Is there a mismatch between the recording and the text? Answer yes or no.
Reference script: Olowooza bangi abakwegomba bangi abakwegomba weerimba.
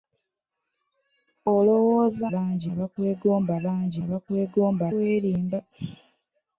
no